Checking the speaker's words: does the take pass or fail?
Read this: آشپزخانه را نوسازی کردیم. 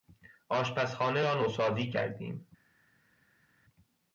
pass